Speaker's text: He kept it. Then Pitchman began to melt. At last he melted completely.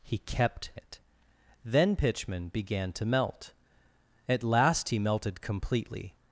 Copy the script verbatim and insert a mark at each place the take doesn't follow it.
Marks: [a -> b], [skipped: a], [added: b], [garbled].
He kept it. Then Pitchman began to melt. At last he melted completely.